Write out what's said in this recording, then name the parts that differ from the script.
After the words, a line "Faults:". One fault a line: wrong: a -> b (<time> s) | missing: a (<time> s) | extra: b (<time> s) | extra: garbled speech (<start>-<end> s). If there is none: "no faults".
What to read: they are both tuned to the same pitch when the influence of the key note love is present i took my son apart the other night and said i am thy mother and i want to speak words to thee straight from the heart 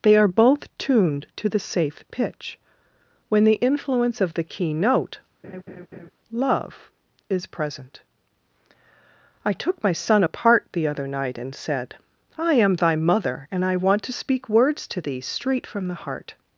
they are both tuned to the safe pitch when the influence of the key note love is present i took my son apart the other night and said i am thy mother and i want to speak words to thee straight from the heart
Faults:
wrong: same -> safe (1.6 s)